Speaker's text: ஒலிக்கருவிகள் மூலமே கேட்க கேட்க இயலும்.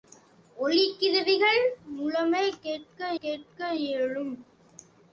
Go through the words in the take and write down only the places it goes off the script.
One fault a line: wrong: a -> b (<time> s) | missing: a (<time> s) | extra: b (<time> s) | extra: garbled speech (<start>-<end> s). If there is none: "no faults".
no faults